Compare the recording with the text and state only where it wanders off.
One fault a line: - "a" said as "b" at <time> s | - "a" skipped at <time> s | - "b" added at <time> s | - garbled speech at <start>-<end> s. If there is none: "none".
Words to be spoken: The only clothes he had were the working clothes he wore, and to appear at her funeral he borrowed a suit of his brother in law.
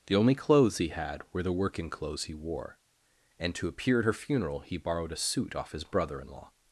- "of" said as "off" at 5.5 s